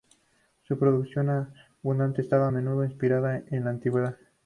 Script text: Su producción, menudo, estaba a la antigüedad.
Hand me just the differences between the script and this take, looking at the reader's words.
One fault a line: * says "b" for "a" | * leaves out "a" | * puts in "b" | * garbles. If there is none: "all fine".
* says "abundante" for "menudo"
* puts in "menudo inspirada en"